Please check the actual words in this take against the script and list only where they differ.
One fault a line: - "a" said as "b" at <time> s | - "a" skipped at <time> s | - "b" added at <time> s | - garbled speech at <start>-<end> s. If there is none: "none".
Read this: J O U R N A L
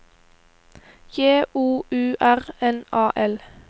none